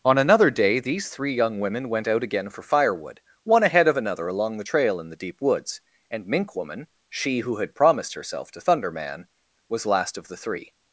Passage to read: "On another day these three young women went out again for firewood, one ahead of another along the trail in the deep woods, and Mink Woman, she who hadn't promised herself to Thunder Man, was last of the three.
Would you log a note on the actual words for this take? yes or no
yes